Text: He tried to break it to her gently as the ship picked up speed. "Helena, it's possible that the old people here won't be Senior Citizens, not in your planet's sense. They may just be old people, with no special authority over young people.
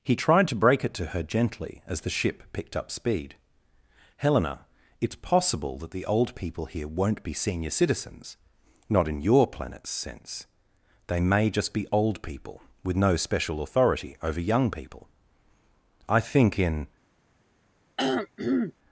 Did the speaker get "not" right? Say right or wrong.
right